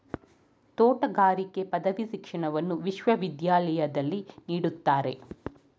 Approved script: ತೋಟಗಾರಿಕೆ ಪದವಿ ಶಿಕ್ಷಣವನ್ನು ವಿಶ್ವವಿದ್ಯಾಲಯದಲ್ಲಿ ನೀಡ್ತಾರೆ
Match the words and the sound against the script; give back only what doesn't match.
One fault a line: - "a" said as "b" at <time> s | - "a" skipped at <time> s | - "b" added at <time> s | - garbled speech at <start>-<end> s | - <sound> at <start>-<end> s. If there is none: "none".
none